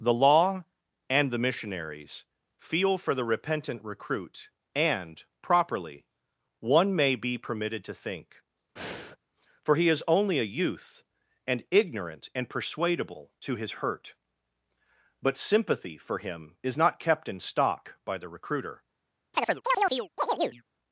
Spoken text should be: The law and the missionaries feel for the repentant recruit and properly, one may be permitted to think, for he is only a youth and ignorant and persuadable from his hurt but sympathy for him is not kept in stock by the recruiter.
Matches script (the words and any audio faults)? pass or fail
fail